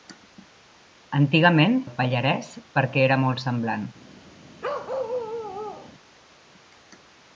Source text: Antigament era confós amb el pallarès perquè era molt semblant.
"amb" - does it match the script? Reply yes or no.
no